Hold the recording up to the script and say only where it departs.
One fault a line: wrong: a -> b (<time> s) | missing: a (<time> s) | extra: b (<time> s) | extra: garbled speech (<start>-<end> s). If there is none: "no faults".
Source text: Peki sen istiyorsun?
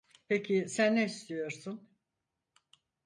extra: ne (0.9 s)